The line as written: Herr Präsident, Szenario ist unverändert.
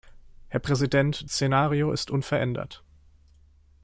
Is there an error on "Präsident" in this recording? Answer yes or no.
no